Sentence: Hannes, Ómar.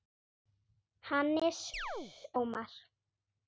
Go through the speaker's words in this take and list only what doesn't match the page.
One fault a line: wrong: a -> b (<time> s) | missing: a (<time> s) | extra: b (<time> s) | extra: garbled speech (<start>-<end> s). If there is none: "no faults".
no faults